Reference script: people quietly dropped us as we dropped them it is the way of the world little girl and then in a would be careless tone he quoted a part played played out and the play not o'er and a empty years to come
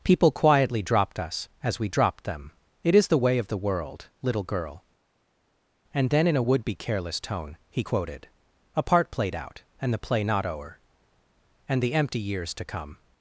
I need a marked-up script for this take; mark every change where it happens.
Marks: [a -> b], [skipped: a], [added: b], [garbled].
people quietly dropped us as we dropped them it is the way of the world little girl and then in a would be careless tone he quoted a part played [skipped: played] out and the play not o'er and [a -> the] empty years to come